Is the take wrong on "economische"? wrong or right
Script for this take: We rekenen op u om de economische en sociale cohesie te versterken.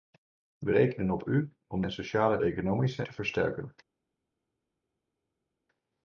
wrong